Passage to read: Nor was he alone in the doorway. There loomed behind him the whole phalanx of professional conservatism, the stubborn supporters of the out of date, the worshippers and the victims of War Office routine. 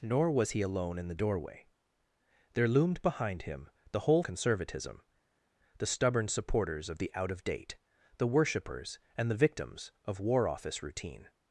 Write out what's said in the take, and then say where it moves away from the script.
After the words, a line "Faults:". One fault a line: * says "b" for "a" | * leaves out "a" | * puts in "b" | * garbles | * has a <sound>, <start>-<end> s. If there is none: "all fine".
Nor was he alone in the doorway. There loomed behind him the whole conservatism, the stubborn supporters of the out of date, the worshippers and the victims of War Office routine.
Faults:
* leaves out "phalanx of professional"